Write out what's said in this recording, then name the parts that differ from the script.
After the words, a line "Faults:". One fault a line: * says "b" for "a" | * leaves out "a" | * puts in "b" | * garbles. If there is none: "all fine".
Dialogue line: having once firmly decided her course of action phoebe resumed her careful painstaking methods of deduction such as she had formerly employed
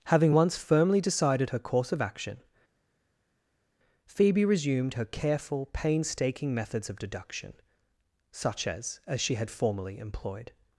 having once firmly decided her course of action phoebe resumed her careful painstaking methods of deduction such as as she had formerly employed
Faults:
* puts in "as"